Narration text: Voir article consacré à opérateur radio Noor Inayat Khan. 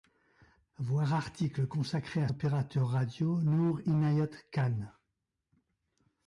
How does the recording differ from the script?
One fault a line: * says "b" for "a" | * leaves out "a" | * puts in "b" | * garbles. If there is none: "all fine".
all fine